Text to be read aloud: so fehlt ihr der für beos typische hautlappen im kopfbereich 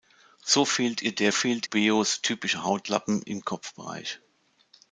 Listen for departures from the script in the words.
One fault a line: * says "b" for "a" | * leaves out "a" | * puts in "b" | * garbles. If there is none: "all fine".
* says "fehlt" for "für"